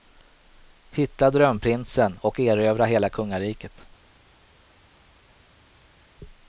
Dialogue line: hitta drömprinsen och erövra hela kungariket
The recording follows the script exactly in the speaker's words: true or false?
true